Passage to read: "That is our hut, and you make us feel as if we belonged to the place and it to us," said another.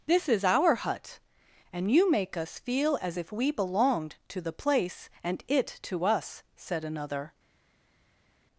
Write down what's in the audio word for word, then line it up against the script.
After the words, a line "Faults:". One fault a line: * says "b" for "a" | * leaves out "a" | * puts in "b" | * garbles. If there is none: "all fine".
"This is our hut, and you make us feel as if we belonged to the place and it to us," said another.
Faults:
* says "This" for "That"